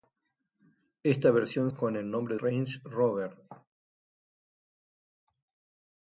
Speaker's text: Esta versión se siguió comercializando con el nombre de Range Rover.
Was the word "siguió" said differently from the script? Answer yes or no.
yes